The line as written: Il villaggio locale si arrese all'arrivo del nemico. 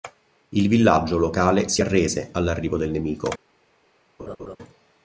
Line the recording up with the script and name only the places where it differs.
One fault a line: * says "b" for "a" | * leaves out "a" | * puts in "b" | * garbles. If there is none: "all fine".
all fine